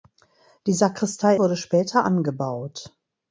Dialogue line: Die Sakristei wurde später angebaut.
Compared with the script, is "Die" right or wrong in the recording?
right